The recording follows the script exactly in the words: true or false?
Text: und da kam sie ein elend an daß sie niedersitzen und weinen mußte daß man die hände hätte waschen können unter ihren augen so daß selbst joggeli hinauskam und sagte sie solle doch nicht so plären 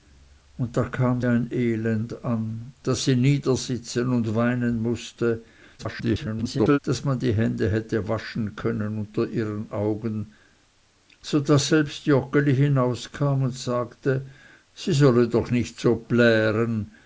false